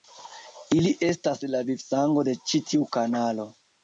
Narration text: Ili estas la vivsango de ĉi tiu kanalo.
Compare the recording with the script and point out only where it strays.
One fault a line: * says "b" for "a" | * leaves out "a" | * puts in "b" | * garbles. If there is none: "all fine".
all fine